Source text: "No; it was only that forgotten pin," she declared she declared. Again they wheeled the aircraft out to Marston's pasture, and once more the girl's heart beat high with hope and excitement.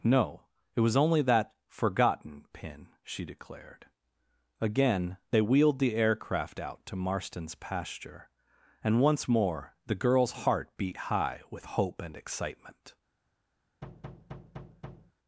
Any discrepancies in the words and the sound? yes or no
yes